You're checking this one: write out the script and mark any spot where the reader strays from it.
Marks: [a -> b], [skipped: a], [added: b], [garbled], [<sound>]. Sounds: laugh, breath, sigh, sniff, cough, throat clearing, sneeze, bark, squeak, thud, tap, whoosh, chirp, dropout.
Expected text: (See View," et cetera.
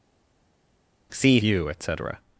(See View," et cetera.